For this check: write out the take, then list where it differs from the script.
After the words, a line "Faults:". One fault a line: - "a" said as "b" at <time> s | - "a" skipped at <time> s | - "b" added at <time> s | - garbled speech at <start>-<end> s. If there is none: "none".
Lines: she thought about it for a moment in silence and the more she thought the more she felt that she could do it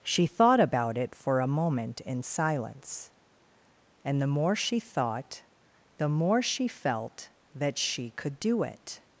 she thought about it for a moment in silence and the more she thought the more she felt that she could do it
Faults:
none